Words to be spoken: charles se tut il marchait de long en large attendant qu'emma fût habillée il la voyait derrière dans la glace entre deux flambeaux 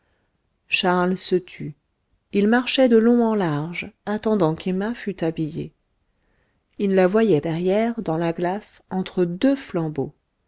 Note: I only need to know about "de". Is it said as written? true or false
true